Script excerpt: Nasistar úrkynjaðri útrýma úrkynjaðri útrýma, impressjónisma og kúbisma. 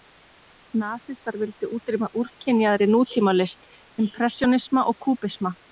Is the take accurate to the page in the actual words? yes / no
no